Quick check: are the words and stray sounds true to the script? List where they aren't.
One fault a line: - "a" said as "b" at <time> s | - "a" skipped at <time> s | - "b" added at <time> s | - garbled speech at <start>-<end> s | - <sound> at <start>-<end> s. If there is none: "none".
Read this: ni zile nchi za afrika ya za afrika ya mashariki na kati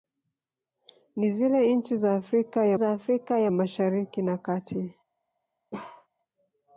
- bark at 5.7-6.1 s